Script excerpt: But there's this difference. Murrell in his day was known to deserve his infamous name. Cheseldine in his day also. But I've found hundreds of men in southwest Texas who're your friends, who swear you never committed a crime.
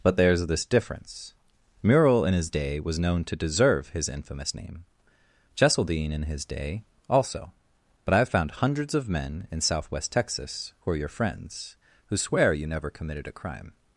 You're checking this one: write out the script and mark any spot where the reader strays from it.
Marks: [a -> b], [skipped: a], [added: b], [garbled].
But there's this difference. Murrell in his day was known to deserve his infamous name. Cheseldine in his day also. But I've found hundreds of men in southwest Texas who're your friends, who swear you never committed a crime.